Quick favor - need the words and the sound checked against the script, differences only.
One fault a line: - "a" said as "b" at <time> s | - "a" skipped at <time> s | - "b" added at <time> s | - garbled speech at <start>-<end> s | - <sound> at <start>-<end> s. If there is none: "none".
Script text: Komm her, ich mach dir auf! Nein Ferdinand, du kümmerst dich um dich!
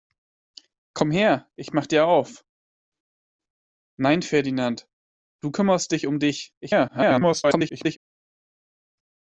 - garbled speech at 6.6-8.0 s